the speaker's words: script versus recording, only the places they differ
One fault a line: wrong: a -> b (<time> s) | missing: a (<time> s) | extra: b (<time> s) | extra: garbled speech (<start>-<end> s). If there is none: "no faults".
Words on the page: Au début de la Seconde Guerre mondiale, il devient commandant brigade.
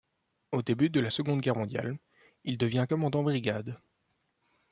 no faults